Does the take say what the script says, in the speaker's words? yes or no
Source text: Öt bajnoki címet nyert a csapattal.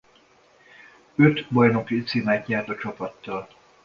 yes